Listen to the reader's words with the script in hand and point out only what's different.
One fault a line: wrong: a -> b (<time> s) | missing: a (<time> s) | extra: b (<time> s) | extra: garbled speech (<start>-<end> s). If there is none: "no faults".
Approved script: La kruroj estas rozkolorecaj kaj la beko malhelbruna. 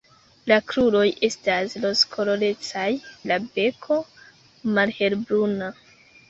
missing: kaj (2.9 s)